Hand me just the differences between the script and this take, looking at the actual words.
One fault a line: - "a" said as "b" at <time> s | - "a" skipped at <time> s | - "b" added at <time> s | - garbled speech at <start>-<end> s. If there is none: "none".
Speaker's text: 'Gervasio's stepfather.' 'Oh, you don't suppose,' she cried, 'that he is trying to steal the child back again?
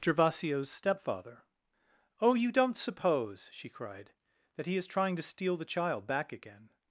none